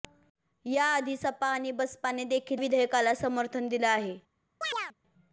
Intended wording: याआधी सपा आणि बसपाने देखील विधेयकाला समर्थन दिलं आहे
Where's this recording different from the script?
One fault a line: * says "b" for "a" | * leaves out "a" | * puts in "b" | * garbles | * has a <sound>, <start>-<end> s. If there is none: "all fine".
* has a chirp, 4.6-4.9 s